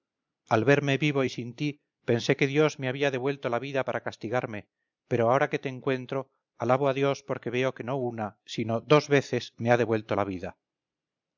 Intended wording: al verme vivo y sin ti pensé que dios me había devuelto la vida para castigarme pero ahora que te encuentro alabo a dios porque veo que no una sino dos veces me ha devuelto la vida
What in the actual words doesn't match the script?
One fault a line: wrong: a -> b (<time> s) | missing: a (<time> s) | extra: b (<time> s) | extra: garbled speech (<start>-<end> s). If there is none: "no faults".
no faults